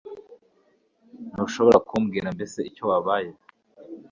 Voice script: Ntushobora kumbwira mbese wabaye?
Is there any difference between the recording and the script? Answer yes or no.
yes